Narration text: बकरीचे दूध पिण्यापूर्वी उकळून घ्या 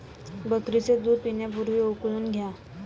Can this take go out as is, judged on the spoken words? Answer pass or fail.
pass